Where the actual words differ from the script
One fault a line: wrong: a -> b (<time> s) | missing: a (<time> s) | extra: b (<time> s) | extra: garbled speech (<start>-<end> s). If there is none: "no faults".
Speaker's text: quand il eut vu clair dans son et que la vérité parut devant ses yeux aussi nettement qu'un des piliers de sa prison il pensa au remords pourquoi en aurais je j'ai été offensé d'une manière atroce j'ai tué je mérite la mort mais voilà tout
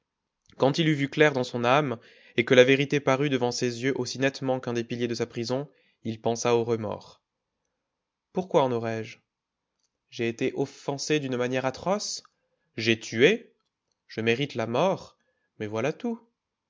extra: âme (1.6 s)